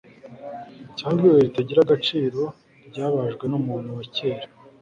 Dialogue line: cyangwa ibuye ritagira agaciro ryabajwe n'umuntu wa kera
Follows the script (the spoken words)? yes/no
yes